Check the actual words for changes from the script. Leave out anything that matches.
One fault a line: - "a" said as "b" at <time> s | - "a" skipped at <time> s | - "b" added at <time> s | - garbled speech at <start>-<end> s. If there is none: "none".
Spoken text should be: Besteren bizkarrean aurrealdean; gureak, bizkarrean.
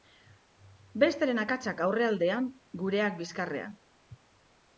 - "bizkarrean" said as "akatsak" at 1.4 s